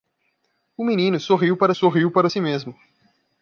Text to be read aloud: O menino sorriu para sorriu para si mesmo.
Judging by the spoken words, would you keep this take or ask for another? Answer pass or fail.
pass